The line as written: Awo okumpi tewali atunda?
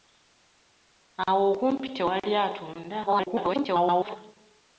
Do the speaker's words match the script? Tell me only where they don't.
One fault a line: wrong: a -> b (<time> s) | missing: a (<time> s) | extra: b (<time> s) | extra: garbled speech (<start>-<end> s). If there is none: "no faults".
extra: garbled speech (3.1-4.2 s)